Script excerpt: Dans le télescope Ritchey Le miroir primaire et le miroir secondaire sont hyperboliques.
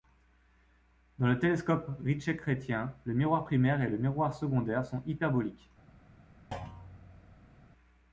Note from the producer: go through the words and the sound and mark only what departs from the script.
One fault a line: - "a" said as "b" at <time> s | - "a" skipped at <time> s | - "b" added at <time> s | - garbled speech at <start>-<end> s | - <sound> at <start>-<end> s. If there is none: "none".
- "Chrétien" added at 2.4 s
- thud at 6.5-7.6 s